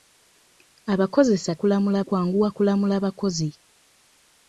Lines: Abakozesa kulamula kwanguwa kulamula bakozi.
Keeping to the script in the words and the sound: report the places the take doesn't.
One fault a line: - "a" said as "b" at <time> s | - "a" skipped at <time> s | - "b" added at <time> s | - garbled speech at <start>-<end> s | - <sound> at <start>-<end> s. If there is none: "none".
none